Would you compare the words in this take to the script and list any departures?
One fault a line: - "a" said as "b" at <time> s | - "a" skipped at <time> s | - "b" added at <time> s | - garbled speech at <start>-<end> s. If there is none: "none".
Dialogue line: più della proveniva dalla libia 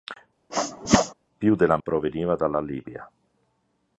none